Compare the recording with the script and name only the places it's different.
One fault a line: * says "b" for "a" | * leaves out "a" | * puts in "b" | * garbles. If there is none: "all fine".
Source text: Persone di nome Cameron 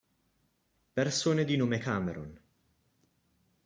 all fine